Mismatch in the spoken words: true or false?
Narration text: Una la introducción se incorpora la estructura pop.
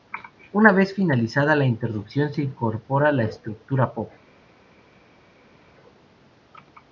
true